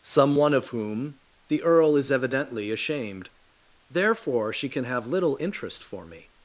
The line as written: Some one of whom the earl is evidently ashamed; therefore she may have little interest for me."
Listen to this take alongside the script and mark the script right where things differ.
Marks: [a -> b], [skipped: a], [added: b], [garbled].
Some one of whom the earl is evidently ashamed; therefore she [may -> can] have little interest for me."